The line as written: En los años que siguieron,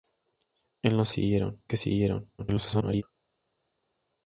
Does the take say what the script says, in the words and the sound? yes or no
no